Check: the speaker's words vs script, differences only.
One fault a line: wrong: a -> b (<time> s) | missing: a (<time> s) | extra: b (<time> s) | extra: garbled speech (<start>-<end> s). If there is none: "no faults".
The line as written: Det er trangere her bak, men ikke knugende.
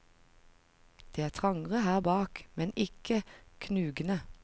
no faults